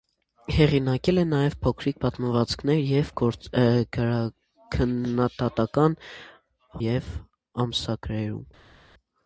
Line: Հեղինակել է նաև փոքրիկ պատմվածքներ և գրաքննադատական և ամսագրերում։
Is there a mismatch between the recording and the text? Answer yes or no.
no